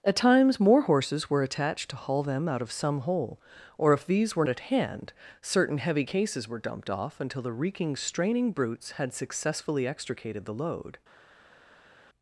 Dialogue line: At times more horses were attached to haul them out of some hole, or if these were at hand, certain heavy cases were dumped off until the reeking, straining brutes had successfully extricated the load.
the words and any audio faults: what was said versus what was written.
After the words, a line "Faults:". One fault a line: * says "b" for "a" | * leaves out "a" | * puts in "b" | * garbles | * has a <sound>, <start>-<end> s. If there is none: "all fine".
At times more horses were attached to haul them out of some hole, or if these were at hand, certain heavy cases were dumped off until the reeking, straining brutes had successfully extricated the load.
Faults:
all fine